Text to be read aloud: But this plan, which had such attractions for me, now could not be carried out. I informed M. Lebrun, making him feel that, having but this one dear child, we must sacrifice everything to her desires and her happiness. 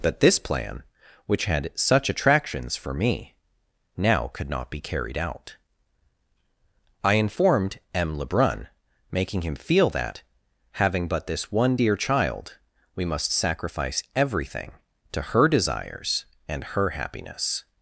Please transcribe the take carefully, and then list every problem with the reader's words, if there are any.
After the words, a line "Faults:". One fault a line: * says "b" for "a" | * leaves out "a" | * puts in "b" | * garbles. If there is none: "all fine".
But this plan, which had such attractions for me, now could not be carried out. I informed M. Lebrun, making him feel that, having but this one dear child, we must sacrifice everything to her desires and her happiness.
Faults:
all fine